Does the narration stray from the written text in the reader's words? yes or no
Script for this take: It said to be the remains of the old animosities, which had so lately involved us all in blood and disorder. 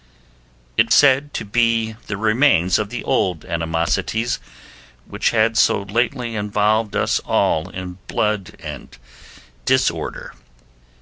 no